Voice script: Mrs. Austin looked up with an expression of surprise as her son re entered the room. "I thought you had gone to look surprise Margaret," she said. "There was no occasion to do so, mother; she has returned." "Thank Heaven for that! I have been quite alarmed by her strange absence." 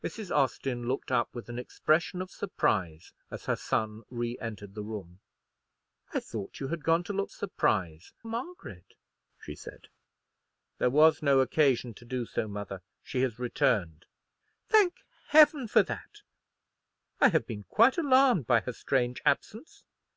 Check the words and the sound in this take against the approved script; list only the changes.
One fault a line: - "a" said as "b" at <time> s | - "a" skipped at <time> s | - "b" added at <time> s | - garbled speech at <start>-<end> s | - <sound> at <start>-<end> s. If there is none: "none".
none